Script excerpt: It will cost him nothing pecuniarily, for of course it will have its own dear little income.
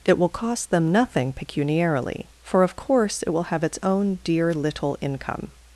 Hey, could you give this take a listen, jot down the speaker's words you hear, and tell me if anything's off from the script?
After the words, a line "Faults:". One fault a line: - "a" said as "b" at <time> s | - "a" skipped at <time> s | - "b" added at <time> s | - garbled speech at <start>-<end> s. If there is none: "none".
It will cost them nothing pecuniarily, for of course it will have its own dear little income.
Faults:
- "him" said as "them" at 0.7 s